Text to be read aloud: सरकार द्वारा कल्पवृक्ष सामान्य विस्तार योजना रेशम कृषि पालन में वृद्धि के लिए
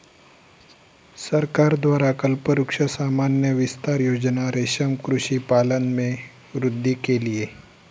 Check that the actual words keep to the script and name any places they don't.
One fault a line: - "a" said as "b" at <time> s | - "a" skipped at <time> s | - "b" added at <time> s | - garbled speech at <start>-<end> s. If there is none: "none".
none